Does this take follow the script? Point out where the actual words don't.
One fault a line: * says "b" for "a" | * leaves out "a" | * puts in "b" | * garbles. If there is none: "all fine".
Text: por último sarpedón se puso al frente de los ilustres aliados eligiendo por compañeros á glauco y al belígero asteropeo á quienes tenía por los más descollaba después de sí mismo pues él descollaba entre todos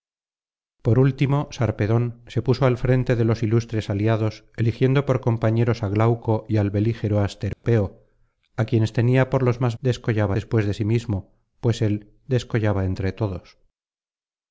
all fine